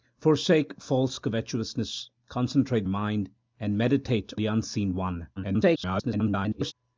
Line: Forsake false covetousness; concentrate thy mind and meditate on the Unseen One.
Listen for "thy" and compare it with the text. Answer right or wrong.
wrong